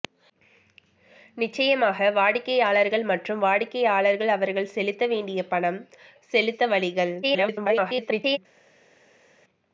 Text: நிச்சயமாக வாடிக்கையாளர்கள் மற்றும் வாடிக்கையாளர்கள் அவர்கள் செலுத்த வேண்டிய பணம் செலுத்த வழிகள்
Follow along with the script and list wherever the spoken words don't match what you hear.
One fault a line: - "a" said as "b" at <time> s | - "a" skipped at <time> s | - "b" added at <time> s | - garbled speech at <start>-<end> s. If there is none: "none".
- garbled speech at 7.2-8.4 s